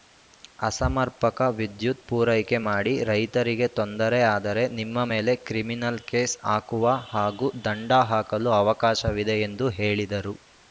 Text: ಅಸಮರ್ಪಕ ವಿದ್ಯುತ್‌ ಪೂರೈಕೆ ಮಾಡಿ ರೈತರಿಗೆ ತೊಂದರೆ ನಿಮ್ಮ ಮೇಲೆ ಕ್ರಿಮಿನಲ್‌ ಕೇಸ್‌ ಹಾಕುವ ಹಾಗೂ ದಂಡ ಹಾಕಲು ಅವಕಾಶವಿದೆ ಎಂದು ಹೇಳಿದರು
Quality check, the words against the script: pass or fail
fail